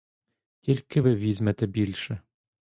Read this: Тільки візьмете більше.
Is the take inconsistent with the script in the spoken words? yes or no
yes